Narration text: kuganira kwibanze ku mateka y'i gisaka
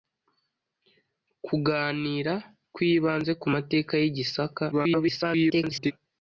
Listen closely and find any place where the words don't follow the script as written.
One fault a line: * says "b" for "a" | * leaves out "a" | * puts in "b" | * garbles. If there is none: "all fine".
* garbles